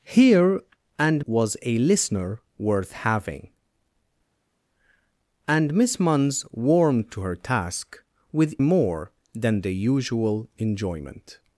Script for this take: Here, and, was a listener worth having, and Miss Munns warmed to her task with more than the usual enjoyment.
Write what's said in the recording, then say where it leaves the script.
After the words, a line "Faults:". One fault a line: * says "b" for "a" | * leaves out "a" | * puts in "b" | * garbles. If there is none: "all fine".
Here, and, was a listener worth having, and Miss Munns warmed to her task with more than the usual enjoyment.
Faults:
all fine